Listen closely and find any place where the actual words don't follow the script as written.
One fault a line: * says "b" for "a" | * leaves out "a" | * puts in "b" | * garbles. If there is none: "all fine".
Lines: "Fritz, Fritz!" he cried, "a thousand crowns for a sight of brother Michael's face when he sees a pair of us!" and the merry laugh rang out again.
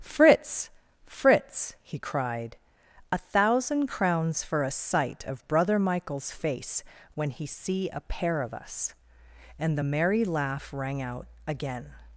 * says "see" for "sees"